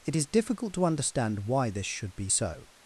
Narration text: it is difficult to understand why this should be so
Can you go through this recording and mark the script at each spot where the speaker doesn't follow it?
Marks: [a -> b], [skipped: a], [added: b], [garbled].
it is difficult to understand why this should be so